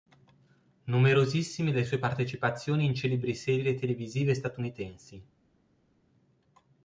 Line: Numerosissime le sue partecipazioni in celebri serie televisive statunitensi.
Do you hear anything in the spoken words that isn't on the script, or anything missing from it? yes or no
no